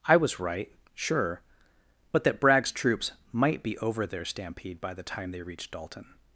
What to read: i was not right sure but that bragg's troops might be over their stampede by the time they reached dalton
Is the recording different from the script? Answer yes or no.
yes